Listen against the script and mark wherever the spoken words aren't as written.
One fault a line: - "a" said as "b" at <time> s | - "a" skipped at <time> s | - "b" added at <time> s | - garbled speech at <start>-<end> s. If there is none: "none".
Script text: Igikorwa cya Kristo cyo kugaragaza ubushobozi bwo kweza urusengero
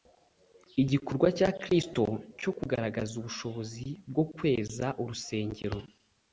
none